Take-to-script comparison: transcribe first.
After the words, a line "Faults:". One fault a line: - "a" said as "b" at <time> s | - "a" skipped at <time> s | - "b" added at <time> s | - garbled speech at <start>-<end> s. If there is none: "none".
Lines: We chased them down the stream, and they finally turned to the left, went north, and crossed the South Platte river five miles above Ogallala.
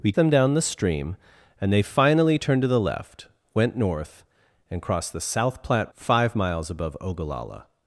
We them down the stream, and they finally turned to the left, went north, and crossed the South Platte five miles above Ogallala.
Faults:
- "chased" skipped at 0.1 s
- "river" skipped at 5.9 s